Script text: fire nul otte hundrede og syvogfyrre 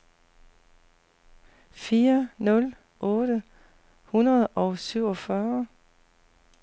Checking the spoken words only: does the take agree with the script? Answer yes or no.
yes